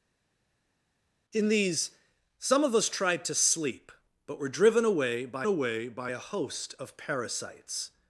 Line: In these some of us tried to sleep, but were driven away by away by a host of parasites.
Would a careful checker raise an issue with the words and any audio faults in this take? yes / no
no